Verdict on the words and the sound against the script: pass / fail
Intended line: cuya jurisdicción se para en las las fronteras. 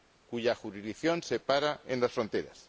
fail